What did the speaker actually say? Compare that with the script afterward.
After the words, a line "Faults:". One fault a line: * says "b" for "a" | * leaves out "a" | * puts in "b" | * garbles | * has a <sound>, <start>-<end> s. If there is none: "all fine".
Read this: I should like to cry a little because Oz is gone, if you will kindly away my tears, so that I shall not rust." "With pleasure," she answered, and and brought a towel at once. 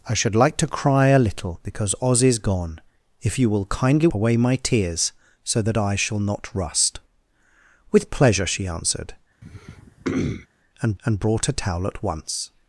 I should like to cry a little because Oz is gone, if you will kindly away my tears, so that I shall not rust." "With pleasure," she answered, and and brought a towel at once.
Faults:
* has a throat clearing, 9.4-10.5 s